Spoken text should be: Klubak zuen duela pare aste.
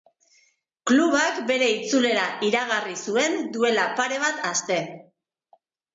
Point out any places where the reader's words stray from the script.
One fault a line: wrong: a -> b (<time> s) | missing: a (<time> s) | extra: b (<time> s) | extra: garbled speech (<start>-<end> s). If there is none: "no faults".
extra: bere itzulera iragarri (1.5 s)
extra: bat (4.2 s)